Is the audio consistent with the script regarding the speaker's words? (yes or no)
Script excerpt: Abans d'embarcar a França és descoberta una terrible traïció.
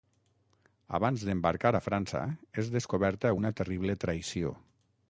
yes